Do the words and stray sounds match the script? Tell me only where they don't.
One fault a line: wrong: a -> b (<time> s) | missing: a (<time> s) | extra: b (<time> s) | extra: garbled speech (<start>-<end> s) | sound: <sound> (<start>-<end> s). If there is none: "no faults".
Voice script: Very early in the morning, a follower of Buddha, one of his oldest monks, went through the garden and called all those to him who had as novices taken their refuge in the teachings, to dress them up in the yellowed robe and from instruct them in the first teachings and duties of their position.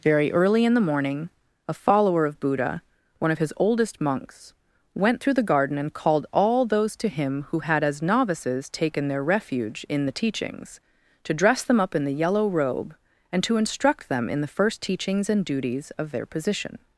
wrong: yellowed -> yellow (12.1 s)
wrong: from -> to (13.4 s)